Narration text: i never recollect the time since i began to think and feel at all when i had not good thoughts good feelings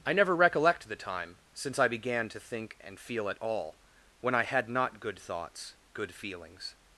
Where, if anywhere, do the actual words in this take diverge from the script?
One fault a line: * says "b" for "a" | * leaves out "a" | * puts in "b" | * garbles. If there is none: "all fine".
all fine